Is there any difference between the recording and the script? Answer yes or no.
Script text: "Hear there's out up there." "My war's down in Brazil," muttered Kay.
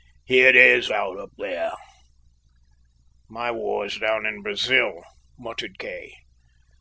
no